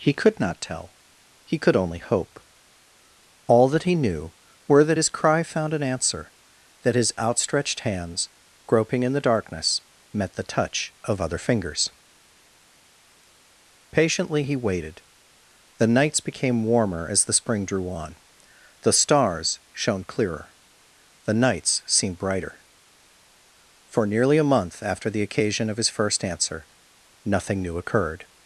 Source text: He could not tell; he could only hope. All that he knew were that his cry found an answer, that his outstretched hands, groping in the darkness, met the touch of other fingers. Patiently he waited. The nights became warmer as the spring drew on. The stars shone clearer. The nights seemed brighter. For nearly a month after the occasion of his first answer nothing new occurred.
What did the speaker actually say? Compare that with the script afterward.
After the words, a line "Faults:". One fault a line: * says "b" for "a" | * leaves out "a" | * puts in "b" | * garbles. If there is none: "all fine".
He could not tell; he could only hope. All that he knew were that his cry found an answer, that his outstretched hands, groping in the darkness, met the touch of other fingers. Patiently he waited. The nights became warmer as the spring drew on. The stars shone clearer. The nights seemed brighter. For nearly a month after the occasion of his first answer nothing new occurred.
Faults:
all fine